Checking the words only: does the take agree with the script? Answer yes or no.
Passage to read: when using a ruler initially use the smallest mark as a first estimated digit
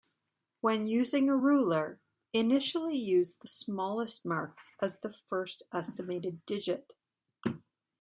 no